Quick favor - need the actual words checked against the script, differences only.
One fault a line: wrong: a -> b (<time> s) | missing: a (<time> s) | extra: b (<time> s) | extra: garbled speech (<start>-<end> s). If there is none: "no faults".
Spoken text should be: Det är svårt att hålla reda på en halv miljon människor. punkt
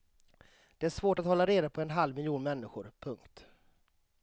no faults